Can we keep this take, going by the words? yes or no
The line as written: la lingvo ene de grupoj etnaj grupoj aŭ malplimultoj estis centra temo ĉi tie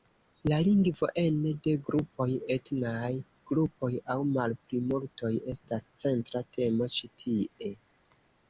no